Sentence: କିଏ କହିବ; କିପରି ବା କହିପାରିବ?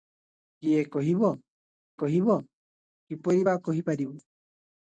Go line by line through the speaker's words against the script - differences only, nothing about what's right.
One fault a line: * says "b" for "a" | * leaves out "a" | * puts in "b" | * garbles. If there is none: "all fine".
* puts in "କହିବ"